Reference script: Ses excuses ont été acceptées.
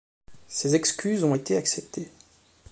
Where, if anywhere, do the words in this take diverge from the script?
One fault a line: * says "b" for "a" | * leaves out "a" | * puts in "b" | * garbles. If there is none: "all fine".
all fine